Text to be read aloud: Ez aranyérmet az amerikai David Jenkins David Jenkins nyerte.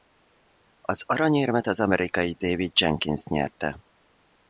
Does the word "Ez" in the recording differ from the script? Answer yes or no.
yes